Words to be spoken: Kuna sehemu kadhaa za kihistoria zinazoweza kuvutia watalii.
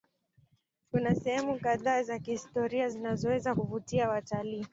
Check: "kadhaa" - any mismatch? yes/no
no